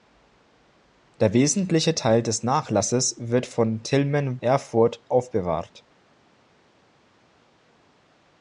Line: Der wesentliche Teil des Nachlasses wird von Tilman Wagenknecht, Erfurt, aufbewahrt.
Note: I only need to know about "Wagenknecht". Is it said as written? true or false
false